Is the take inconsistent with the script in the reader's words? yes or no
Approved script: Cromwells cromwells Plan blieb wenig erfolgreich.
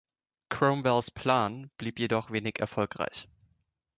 yes